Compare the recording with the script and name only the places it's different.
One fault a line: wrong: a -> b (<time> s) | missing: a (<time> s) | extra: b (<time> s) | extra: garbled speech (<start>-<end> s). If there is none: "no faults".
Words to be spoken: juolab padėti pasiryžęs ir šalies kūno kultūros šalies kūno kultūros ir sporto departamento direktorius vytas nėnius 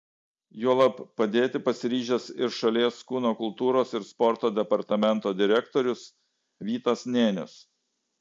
missing: šalies kūno kultūros (3.9 s)